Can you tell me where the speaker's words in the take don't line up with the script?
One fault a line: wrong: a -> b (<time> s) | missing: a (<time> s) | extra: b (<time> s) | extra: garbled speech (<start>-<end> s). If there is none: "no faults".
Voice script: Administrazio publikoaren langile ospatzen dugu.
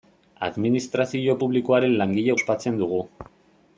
no faults